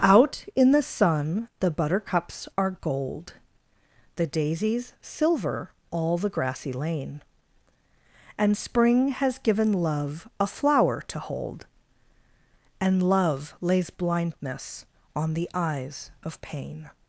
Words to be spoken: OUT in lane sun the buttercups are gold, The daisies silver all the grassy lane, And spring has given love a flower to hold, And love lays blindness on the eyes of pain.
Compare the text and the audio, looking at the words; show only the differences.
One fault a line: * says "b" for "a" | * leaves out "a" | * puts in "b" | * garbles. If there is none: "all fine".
* says "the" for "lane"